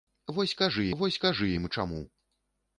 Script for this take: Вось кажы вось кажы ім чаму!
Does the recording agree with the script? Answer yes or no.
yes